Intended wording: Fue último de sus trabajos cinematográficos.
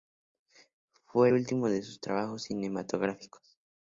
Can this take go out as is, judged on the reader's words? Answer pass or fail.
pass